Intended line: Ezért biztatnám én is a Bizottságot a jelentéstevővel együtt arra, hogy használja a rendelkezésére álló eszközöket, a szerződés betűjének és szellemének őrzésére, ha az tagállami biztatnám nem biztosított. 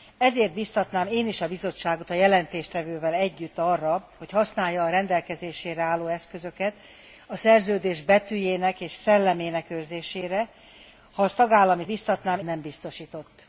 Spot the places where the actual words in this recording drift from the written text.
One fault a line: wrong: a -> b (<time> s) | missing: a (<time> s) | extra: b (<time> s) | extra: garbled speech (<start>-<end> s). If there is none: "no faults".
no faults